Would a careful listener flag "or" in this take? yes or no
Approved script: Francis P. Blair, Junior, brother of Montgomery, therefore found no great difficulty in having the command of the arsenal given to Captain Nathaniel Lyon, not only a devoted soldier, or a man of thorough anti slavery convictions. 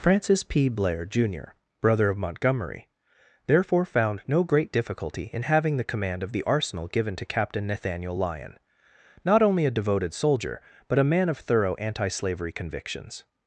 yes